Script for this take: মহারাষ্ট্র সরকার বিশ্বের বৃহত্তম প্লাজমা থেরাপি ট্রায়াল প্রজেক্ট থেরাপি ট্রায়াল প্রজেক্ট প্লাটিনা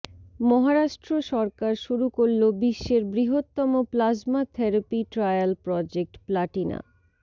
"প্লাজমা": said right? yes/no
yes